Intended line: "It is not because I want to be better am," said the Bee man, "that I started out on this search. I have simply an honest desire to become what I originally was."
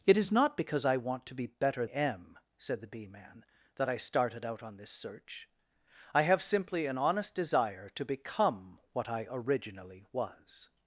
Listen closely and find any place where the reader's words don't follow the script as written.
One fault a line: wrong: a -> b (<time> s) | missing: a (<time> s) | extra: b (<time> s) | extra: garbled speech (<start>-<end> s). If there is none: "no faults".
no faults